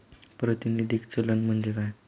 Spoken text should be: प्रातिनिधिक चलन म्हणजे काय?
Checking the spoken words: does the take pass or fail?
pass